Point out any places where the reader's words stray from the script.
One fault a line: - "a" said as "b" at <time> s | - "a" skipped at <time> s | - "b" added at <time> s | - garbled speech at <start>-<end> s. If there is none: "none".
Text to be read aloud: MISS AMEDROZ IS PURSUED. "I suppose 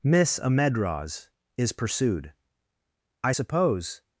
none